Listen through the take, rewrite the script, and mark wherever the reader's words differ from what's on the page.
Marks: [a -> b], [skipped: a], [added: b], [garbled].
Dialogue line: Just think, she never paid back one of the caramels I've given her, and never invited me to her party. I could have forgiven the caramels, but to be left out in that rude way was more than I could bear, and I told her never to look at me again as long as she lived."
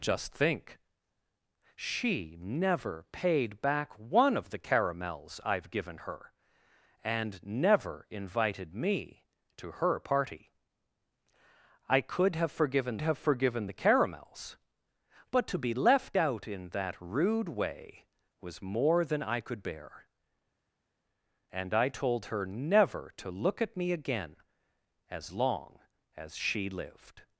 Just think, she never paid back one of the caramels I've given her, and never invited me to her party. I could have forgiven [added: have forgiven] the caramels, but to be left out in that rude way was more than I could bear, and I told her never to look at me again as long as she lived."